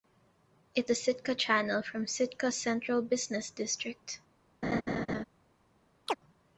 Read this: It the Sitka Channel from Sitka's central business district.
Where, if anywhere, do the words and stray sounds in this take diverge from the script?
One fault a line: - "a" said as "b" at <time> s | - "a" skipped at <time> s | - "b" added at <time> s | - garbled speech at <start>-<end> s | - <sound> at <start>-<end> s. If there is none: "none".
- laugh at 4.6-5.2 s
- chirp at 6.1-6.1 s